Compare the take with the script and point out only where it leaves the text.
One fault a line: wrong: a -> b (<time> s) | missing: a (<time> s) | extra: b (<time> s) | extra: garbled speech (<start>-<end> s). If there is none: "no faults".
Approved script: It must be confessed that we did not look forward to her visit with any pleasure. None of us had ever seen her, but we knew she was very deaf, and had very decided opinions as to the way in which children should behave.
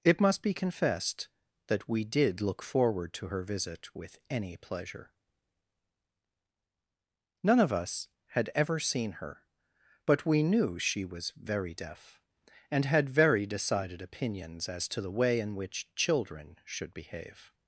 missing: not (2.4 s)